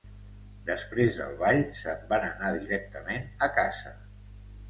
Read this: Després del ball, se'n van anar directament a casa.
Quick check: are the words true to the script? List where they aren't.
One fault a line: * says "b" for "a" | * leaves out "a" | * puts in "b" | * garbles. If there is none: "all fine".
all fine